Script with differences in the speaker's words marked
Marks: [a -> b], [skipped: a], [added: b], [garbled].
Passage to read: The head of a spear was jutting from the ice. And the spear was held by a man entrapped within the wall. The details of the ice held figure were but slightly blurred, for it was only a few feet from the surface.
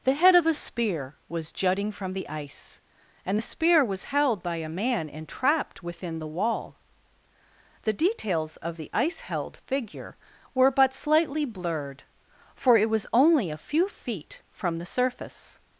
The head of a spear was jutting from the ice. And the spear was held by a man entrapped within the wall. The details of the ice held figure were but slightly blurred, for it was only a few feet from the surface.